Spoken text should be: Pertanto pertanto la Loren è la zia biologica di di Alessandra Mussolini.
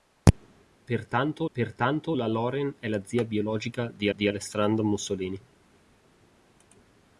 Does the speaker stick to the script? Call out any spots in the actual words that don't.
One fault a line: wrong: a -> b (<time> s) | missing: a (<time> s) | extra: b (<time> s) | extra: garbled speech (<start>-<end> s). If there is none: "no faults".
no faults